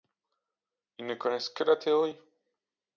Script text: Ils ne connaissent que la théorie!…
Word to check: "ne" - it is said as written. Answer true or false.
true